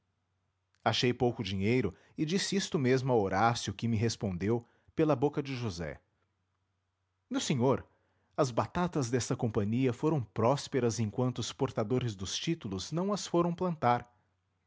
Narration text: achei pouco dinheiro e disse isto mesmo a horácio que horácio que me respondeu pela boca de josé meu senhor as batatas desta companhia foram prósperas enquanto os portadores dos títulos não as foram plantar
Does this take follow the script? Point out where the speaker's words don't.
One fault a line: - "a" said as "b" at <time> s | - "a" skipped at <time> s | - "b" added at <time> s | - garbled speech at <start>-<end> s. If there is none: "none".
- "horácio que" skipped at 3.8 s